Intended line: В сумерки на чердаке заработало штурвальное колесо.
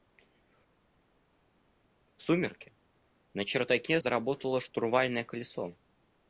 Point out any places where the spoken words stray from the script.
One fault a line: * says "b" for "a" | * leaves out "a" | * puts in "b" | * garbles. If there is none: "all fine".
all fine